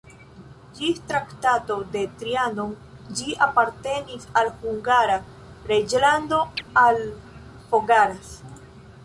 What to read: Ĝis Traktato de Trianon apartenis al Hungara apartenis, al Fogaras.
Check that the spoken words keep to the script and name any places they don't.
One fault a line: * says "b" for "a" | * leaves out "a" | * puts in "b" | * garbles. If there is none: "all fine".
* puts in "ĝi"
* says "reĝlando" for "apartenis"